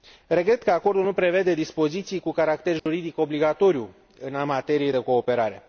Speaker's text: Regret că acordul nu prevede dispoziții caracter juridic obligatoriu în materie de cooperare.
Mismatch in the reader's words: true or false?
true